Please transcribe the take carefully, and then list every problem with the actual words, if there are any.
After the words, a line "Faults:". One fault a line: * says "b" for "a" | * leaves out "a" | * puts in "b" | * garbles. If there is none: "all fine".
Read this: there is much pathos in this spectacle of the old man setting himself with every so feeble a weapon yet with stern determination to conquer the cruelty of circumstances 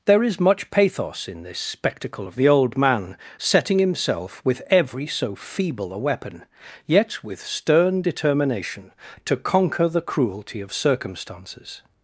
there is much pathos in this spectacle of the old man setting himself with every so feeble a weapon yet with stern determination to conquer the cruelty of circumstances
Faults:
all fine